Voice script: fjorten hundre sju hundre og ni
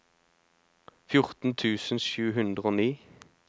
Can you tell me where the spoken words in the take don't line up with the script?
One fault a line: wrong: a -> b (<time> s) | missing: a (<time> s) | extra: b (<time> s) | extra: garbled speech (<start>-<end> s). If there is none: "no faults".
wrong: hundre -> tusen (1.6 s)